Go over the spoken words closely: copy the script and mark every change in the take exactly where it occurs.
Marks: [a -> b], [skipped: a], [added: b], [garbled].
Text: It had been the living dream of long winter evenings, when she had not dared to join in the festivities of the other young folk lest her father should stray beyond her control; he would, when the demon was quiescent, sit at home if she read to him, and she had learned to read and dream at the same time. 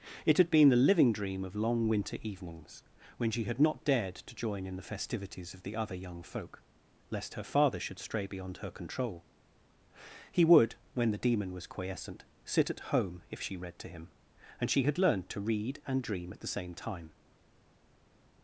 It had been the living dream of long winter evenings, when she had not dared to join in the festivities of the other young folk lest her father should stray beyond her control; he would, when the demon was quiescent, sit at home if she read to him, and she had learned to read and dream at the same time.